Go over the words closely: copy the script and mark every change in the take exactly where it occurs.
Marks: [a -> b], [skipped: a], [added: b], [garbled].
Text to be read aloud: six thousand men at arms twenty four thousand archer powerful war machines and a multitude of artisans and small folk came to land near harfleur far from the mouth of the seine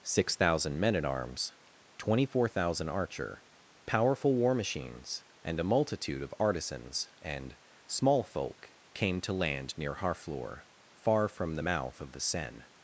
six thousand men at arms twenty four thousand archer powerful war machines and a multitude of artisans and small folk came to land near harfleur far from the mouth of the seine